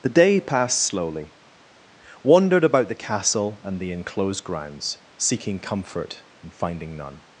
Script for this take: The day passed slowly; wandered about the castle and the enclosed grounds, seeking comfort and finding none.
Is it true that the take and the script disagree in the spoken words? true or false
false